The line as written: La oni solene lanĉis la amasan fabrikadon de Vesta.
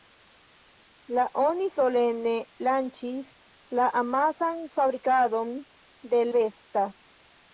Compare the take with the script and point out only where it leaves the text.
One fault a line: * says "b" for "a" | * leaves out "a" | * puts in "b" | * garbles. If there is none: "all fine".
all fine